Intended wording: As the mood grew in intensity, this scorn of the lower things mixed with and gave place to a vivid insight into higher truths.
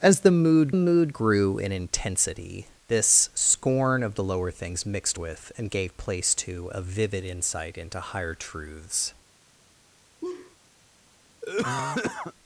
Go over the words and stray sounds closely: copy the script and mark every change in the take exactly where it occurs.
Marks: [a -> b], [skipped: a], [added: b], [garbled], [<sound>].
As the mood [added: mood] grew in intensity, this scorn of the lower things mixed with and gave place to a vivid insight into higher truths. [laugh] [cough]